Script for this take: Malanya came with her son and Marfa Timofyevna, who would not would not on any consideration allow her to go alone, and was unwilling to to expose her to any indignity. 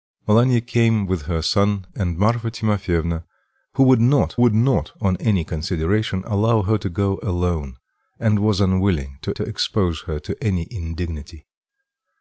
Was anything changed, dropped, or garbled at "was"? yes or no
no